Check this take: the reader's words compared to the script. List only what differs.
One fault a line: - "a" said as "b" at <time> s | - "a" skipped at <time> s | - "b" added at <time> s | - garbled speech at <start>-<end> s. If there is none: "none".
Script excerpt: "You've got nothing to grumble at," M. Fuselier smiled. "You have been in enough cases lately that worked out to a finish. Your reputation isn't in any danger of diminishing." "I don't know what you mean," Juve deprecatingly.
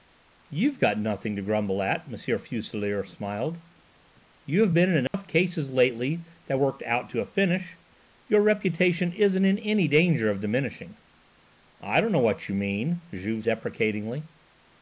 none